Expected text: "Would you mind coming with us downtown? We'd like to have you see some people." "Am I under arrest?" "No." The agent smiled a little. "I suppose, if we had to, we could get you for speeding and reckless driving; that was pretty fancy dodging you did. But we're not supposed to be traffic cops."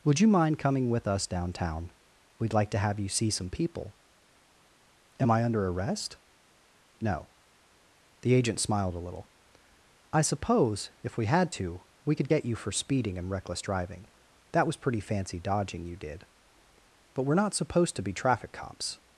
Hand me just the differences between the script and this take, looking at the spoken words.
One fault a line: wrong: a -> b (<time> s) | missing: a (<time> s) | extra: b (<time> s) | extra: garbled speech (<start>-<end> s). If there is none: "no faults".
no faults